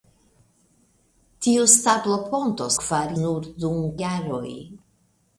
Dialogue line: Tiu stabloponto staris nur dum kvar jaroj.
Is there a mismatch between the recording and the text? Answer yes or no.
yes